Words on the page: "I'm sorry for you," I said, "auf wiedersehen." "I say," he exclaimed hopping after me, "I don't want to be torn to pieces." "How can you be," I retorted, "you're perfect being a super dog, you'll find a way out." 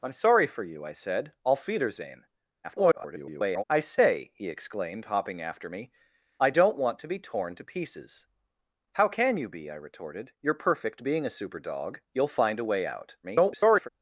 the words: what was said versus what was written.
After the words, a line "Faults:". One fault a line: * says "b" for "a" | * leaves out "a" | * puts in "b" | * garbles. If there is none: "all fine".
"I'm sorry for you," I said, "auf wiedersehen." [garbled] "I say," he exclaimed hopping after me, "I don't want to be torn to pieces." "How can you be," I retorted, "you're perfect being a super dog, you'll find a way out." [garbled]
Faults:
* garbles
* garbles